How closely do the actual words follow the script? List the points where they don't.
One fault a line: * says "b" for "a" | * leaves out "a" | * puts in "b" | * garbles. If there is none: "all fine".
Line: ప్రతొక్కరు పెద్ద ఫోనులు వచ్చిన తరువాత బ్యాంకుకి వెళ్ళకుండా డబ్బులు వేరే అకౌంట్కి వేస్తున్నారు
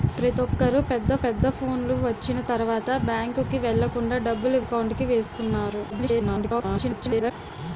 * puts in "పెద్ద"
* leaves out "వేరే"
* garbles